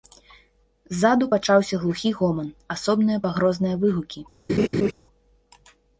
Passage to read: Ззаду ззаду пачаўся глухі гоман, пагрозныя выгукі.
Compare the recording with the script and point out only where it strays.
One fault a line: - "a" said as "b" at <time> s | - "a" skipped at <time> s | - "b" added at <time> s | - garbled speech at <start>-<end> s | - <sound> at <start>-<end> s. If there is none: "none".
- "ззаду" skipped at 1.3 s
- "асобныя" added at 2.8 s
- laugh at 4.5-4.9 s